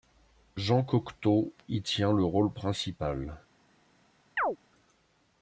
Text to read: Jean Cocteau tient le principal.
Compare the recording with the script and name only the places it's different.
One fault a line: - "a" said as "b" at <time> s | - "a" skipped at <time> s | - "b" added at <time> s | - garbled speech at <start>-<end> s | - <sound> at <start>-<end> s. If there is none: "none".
- "y" added at 1.7 s
- "rôle" added at 2.2 s
- chirp at 4.4-4.6 s